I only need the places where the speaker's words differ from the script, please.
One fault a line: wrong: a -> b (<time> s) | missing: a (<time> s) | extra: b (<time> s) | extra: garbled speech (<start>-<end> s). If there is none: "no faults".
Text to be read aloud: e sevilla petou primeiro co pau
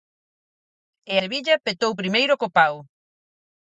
no faults